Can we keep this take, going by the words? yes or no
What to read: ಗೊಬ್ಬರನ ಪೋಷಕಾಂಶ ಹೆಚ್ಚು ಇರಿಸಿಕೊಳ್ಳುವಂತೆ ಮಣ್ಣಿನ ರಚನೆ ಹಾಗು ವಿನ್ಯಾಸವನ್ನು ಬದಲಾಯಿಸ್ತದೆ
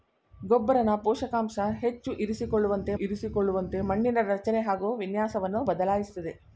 no